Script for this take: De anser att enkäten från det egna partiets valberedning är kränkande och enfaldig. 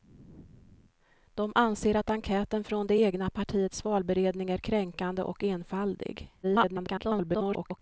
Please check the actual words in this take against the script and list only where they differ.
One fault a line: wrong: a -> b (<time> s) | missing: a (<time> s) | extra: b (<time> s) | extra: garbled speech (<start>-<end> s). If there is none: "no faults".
extra: garbled speech (6.4-7.8 s)